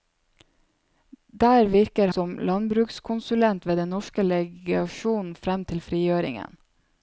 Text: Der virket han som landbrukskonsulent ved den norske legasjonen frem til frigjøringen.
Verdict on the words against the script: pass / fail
fail